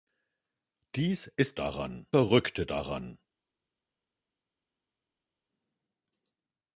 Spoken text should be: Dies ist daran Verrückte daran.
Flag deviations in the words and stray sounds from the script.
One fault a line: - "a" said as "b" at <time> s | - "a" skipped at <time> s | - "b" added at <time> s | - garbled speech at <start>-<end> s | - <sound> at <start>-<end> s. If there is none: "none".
none